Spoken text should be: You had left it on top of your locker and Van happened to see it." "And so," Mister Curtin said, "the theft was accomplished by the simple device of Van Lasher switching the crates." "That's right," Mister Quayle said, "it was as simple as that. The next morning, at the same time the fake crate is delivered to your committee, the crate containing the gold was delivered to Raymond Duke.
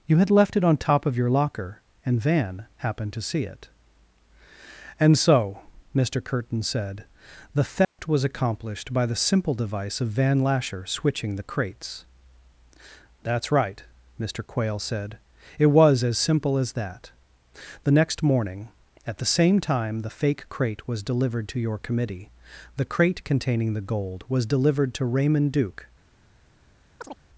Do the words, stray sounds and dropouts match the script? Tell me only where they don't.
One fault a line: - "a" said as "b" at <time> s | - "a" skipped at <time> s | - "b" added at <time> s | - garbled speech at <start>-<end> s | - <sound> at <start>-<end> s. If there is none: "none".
- dropout at 7.8-8.0 s
- "is" said as "was" at 20.9 s
- chirp at 27.0-27.2 s